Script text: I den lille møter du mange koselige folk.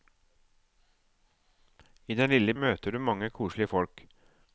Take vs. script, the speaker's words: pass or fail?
pass